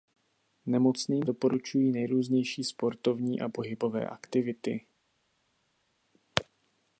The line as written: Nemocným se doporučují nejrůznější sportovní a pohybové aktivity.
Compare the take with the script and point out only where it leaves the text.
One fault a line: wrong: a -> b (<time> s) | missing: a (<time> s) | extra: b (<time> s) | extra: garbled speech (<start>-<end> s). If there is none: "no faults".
missing: se (1.3 s)